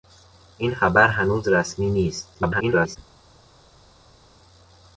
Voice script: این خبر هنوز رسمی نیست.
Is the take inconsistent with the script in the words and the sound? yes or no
yes